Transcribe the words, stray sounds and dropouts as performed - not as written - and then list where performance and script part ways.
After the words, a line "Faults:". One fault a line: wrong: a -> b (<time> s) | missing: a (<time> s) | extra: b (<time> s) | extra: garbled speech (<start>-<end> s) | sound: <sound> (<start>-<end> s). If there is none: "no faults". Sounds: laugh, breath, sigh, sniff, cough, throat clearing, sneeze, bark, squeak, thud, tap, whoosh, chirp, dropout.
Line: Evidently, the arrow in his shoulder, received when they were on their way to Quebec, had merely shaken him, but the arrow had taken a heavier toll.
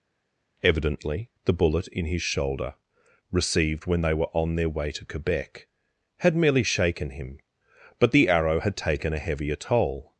Evidently, the bullet in his shoulder, received when they were on their way to Quebec, had merely shaken him, but the arrow had taken a heavier toll.
Faults:
wrong: arrow -> bullet (1.5 s)